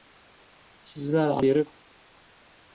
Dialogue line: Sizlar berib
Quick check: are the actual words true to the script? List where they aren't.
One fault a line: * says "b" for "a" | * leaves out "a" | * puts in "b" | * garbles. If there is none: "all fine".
all fine